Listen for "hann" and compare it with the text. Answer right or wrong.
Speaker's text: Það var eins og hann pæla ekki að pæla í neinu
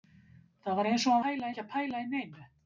right